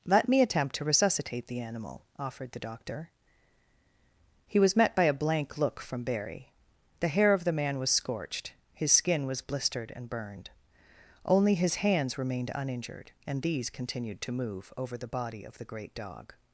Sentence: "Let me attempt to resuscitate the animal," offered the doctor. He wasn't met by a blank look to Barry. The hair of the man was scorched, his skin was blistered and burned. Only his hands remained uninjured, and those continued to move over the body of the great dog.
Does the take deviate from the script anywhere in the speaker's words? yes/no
yes